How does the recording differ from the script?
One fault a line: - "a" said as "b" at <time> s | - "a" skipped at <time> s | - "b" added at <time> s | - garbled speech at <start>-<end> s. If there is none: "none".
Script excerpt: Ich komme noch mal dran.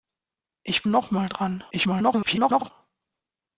- "komme" skipped at 0.8 s
- garbled speech at 1.7-2.7 s